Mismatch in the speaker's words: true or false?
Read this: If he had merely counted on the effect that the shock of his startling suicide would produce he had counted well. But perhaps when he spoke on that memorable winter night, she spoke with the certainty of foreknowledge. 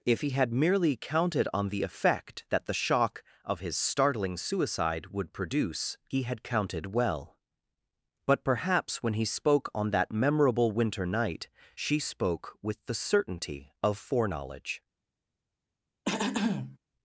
false